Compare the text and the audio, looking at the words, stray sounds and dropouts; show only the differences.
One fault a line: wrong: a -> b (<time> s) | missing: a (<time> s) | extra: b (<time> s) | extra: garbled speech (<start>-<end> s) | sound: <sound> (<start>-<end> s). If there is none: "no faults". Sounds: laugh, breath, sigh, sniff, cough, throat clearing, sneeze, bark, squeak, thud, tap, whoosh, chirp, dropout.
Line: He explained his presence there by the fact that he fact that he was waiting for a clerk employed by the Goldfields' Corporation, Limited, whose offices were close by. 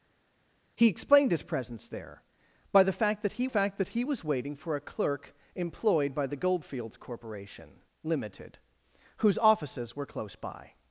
no faults